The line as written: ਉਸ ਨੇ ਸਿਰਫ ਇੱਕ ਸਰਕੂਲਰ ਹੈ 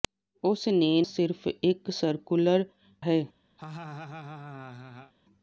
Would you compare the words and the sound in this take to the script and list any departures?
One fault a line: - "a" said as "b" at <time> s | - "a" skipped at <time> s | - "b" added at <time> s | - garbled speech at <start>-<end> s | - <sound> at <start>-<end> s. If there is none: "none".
- laugh at 3.6-5.1 s